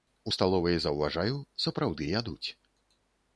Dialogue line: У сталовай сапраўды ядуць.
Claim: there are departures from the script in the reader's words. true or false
true